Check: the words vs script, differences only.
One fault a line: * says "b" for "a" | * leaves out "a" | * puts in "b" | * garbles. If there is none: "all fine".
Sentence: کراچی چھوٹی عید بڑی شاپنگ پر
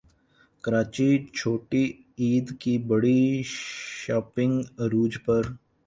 * puts in "کی"
* puts in "عروج"